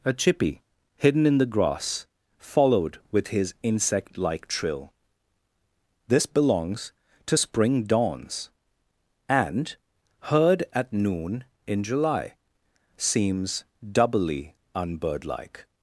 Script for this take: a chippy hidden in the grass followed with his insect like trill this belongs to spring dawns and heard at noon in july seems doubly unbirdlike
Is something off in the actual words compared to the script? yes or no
no